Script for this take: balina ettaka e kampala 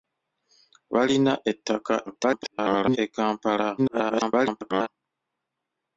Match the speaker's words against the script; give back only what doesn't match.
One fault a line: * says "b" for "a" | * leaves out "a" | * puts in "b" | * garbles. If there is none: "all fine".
* garbles
* garbles